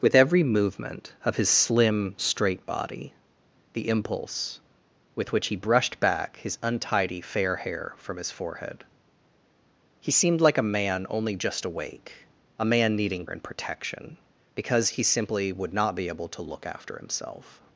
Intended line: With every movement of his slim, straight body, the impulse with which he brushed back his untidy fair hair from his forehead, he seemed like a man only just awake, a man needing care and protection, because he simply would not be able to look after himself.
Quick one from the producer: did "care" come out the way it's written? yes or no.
no